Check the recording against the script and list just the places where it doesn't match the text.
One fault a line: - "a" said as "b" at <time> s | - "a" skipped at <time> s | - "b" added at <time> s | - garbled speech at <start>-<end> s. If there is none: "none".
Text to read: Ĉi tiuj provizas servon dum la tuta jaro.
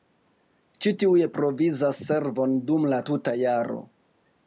none